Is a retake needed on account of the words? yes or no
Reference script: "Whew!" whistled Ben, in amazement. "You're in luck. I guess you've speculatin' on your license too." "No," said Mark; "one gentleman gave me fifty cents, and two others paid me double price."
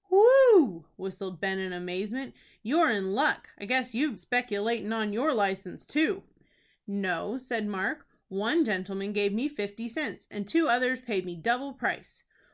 no